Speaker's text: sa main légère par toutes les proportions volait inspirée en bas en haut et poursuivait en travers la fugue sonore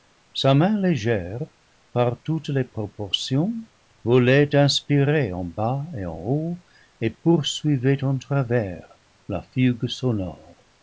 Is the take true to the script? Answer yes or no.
no